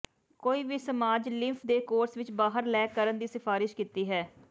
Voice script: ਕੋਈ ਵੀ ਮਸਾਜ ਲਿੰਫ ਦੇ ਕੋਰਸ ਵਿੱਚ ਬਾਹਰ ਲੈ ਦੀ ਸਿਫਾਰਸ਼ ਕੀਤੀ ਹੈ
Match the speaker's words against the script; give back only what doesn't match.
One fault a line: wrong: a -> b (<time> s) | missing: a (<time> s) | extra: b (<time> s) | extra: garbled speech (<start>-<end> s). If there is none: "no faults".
extra: ਕਰਨ (2.9 s)